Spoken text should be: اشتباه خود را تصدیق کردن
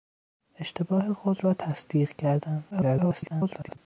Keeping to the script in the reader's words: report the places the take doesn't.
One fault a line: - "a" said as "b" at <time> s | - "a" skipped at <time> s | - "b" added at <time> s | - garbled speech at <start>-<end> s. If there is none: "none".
- garbled speech at 2.7-3.8 s